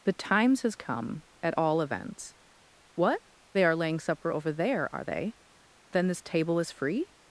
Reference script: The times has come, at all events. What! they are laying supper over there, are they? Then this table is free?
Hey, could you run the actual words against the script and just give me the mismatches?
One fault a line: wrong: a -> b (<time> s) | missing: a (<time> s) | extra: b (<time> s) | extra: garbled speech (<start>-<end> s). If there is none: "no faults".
no faults